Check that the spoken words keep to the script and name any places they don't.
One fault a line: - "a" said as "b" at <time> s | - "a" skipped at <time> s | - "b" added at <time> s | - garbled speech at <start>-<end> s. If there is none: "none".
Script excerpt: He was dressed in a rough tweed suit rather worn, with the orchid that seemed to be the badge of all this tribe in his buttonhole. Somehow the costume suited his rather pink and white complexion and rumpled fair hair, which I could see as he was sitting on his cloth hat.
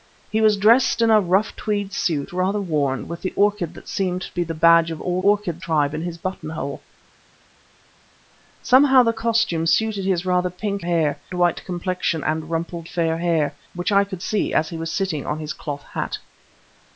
- "this" said as "orchid" at 5.2 s
- "and" said as "hair" at 10.8 s